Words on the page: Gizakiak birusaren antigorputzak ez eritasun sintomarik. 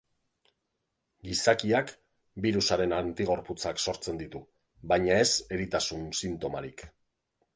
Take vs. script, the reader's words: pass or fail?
fail